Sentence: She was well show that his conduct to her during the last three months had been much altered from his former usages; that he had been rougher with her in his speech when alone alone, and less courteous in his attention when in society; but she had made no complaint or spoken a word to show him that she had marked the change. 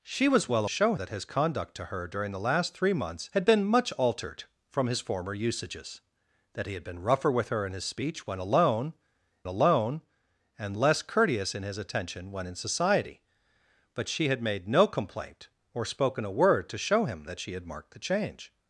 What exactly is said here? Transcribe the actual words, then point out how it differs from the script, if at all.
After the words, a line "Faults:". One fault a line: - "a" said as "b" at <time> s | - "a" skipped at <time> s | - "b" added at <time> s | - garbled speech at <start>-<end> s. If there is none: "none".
She was well show that his conduct to her during the last three months had been much altered from his former usages; that he had been rougher with her in his speech when alone alone, and less courteous in his attention when in society; but she had made no complaint or spoken a word to show him that she had marked the change.
Faults:
none